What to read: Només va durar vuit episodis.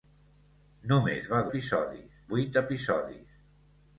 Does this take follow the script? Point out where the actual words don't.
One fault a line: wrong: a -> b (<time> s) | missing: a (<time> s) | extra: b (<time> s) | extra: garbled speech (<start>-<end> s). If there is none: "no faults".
wrong: durar -> episodis (1.5 s)